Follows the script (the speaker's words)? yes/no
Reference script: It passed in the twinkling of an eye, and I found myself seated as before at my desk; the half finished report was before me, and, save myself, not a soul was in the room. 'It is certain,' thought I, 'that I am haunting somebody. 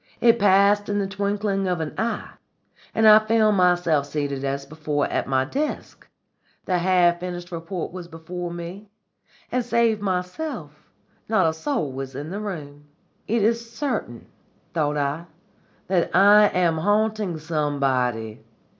yes